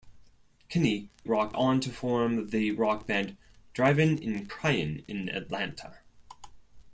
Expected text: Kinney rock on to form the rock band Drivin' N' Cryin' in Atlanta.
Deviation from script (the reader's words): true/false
false